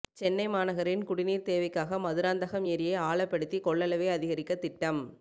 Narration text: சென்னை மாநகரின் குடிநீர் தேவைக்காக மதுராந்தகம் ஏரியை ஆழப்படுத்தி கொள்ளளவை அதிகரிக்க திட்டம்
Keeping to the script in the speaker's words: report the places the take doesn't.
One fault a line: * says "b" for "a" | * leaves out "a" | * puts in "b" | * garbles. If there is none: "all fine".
all fine